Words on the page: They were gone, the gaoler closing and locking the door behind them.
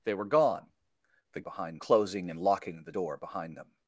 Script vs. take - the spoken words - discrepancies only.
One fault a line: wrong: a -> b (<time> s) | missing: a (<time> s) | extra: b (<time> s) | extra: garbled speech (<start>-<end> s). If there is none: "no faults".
wrong: gaoler -> behind (1.4 s)